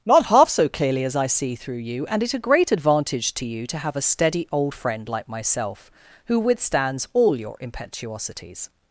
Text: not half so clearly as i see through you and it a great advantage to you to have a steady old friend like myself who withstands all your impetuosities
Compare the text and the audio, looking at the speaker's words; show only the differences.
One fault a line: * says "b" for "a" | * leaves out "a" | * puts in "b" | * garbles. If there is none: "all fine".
all fine